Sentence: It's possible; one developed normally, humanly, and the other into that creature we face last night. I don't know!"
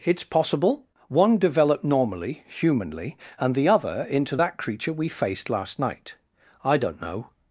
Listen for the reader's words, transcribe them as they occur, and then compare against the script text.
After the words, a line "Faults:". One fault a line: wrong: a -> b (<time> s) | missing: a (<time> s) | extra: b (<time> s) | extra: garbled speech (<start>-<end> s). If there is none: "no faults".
It's possible; one developed normally, humanly, and the other into that creature we faced last night. I don't know!"
Faults:
wrong: face -> faced (5.1 s)